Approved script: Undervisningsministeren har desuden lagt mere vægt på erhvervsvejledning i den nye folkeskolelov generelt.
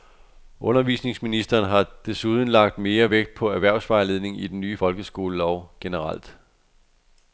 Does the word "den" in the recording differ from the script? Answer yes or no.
no